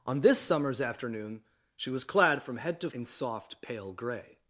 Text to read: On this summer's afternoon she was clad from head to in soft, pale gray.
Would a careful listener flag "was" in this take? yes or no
no